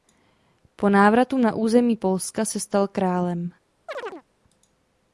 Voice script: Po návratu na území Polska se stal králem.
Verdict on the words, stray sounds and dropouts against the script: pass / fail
fail